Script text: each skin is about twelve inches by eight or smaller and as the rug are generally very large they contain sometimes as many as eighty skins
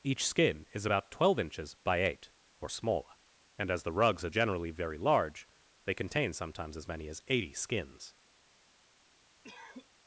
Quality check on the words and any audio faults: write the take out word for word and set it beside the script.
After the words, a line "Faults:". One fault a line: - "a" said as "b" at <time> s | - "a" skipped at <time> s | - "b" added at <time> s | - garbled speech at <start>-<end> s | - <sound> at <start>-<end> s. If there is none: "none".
each skin is about twelve inches by eight or smaller and as the rugs are generally very large they contain sometimes as many as eighty skins
Faults:
- "rug" said as "rugs" at 3.9 s
- cough at 9.4-9.9 s